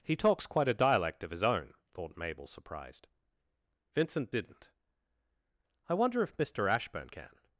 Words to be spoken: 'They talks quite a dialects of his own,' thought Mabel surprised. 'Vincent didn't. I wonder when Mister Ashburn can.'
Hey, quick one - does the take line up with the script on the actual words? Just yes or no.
no